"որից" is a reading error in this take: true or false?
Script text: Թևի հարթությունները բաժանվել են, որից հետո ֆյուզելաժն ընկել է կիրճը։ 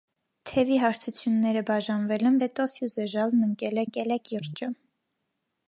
true